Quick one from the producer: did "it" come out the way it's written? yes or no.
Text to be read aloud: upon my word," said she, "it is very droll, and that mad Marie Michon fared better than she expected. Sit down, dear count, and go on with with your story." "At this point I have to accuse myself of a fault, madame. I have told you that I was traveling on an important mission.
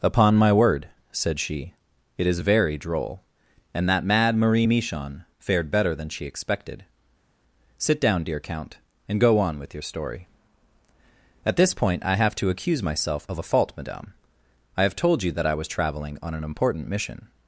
yes